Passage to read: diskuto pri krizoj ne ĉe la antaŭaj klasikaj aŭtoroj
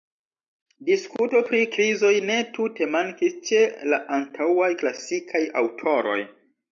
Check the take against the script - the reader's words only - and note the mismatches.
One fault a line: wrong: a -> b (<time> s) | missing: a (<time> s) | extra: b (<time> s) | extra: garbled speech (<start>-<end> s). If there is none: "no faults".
extra: tute mankis (2.6 s)